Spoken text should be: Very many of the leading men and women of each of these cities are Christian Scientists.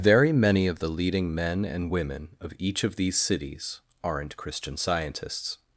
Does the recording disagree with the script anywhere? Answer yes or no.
yes